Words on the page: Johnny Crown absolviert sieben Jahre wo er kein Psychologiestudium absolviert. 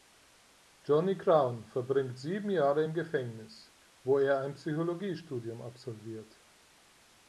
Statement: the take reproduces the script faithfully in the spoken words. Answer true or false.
false